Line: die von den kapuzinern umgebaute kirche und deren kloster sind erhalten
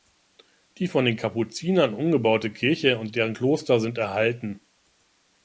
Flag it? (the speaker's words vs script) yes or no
no